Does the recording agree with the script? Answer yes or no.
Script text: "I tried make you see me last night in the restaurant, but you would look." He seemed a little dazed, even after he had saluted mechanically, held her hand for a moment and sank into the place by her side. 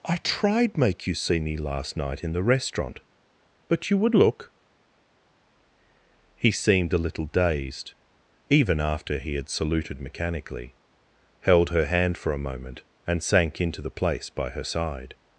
yes